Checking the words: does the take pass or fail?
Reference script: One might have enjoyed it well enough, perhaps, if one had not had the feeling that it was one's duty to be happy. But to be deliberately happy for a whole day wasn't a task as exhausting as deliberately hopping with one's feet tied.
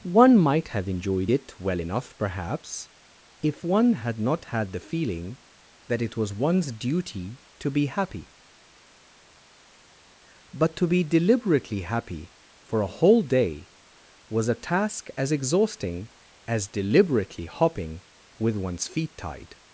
fail